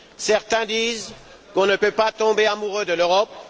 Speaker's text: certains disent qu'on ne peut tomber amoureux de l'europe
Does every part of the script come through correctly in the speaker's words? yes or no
no